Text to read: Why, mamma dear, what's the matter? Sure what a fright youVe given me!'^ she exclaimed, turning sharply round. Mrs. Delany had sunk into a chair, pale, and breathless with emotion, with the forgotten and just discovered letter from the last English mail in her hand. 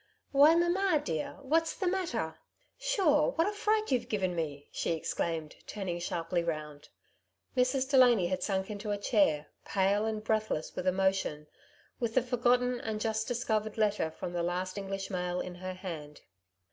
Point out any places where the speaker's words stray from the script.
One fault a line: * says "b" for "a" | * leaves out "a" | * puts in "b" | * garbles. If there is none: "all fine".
all fine